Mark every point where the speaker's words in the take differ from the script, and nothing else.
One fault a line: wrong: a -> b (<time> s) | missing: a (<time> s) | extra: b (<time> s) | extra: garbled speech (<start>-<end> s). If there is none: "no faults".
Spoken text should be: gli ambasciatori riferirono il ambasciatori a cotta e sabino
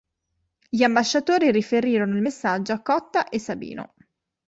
wrong: ambasciatori -> messaggio (2.2 s)